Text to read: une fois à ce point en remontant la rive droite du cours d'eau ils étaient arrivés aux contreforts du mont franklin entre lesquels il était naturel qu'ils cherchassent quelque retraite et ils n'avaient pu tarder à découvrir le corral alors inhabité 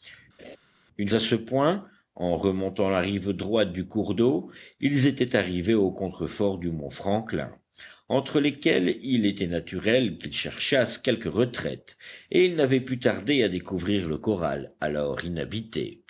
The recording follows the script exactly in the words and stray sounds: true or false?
false